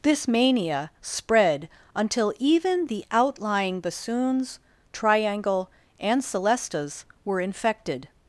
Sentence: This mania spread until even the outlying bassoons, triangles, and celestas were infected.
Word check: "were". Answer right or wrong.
right